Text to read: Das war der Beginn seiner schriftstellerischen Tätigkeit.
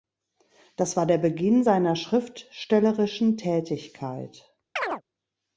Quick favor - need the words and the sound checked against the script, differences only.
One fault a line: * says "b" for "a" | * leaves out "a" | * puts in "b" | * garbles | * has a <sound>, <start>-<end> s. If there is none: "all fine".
* has a chirp, 4.8-5.0 s